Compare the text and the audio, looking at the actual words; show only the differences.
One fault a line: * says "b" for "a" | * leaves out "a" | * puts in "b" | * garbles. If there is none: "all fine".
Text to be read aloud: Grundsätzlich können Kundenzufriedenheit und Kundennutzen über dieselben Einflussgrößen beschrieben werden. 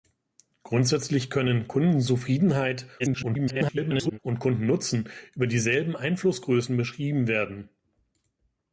* garbles